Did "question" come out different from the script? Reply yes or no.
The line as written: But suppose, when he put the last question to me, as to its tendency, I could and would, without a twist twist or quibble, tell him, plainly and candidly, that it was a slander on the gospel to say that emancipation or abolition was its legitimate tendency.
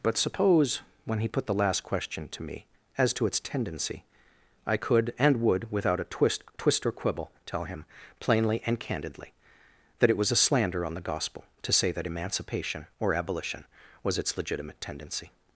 no